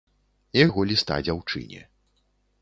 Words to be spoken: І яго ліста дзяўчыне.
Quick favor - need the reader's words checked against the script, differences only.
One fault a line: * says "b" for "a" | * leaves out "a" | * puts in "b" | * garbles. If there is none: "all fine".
all fine